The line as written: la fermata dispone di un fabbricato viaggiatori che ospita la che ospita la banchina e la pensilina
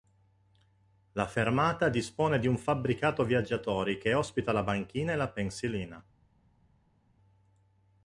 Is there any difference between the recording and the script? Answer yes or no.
yes